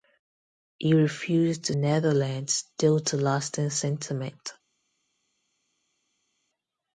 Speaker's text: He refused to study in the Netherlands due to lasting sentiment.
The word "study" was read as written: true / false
false